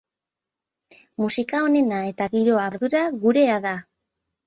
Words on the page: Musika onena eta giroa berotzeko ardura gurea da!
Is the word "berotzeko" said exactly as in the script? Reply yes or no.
no